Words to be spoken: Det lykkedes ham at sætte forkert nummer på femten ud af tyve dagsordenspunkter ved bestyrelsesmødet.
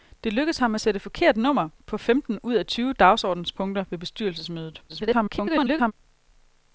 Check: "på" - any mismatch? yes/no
no